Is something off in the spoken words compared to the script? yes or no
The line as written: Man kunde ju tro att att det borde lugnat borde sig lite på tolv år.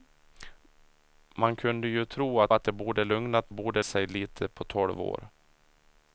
no